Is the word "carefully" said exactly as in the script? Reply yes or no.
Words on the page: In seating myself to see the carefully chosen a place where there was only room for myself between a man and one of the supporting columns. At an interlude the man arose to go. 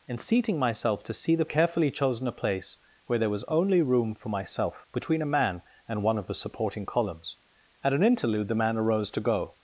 yes